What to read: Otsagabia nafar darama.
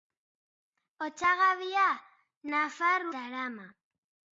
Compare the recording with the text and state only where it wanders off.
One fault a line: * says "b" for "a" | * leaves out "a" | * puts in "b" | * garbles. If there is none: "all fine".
all fine